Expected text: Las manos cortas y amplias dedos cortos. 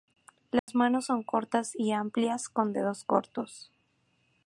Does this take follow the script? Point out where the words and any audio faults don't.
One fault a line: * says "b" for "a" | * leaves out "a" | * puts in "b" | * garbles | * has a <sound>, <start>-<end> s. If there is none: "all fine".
* has a dropout, 0.6-0.7 s
* puts in "son"
* puts in "con"